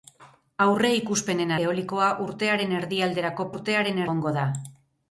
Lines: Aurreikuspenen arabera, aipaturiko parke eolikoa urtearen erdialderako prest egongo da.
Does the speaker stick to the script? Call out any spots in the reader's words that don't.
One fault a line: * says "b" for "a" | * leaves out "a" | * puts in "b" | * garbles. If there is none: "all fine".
* leaves out "arabera aipaturiko parke"
* says "urtearen" for "prest"